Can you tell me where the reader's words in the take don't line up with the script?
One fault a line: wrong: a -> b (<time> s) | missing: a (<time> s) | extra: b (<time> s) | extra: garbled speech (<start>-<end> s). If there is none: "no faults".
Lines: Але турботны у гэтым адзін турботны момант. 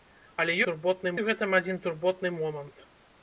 no faults